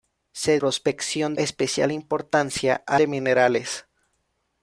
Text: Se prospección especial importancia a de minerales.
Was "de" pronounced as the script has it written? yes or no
yes